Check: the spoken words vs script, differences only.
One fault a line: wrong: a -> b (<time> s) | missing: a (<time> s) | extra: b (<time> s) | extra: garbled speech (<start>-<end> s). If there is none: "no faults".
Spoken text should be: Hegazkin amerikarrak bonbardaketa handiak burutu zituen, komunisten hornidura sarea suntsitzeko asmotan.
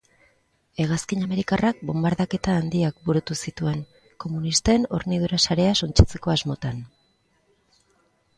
no faults